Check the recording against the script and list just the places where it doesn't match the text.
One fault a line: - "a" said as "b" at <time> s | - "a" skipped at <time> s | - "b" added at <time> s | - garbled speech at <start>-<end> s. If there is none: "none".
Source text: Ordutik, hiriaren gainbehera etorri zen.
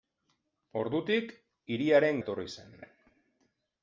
- "gainbehera" skipped at 2.2 s